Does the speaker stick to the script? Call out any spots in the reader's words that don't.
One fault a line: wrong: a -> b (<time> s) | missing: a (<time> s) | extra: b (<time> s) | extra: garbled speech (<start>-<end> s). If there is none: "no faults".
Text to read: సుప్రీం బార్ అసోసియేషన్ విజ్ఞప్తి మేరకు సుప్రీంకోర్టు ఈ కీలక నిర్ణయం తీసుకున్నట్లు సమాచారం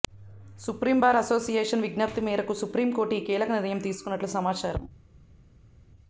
no faults